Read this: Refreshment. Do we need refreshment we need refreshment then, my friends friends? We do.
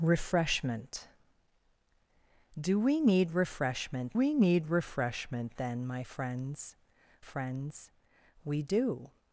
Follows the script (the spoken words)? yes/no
yes